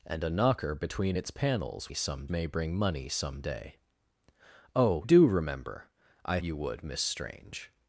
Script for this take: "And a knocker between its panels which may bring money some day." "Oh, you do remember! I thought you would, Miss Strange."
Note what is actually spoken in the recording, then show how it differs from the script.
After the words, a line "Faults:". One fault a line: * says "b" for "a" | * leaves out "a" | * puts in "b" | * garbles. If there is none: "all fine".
"And a knocker between its panels some may bring money some day." "Oh, do remember! I you would, Miss Strange."
Faults:
* says "some" for "which"
* leaves out "you"
* leaves out "thought"